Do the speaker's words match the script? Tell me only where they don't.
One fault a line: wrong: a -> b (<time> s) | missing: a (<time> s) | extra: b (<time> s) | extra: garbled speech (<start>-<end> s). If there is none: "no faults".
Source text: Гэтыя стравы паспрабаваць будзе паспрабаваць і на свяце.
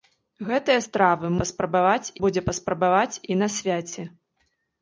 no faults